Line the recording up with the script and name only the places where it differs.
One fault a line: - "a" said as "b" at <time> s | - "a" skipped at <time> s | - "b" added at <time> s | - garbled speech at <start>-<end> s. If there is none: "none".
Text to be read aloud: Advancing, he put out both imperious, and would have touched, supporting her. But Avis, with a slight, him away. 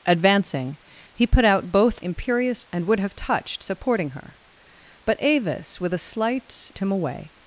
none